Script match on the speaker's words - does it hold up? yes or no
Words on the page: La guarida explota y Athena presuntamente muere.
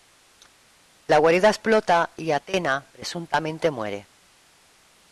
yes